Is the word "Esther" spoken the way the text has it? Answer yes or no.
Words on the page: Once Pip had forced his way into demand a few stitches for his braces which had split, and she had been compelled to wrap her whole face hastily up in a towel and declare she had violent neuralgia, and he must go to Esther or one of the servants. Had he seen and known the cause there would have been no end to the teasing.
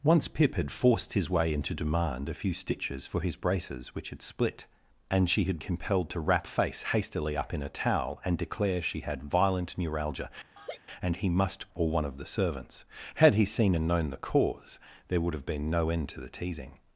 no